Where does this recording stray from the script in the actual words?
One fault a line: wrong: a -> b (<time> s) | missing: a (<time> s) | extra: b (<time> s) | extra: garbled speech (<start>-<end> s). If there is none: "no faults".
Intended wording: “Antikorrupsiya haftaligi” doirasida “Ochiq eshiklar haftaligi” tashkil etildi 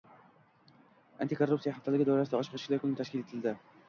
wrong: haftaligi -> kuni (2.8 s)